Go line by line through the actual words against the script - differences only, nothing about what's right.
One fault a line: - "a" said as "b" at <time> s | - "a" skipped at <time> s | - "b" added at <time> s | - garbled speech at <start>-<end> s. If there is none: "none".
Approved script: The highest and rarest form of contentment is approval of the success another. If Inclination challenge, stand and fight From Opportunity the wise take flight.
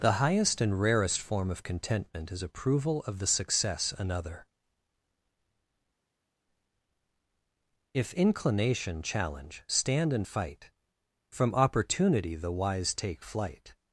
none